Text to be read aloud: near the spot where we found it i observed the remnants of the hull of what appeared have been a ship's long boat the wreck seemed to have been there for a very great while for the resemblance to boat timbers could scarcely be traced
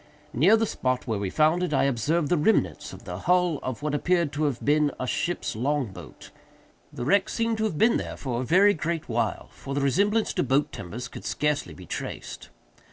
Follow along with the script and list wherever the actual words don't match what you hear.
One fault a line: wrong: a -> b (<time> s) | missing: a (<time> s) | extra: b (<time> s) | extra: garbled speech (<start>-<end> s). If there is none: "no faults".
extra: to (4.3 s)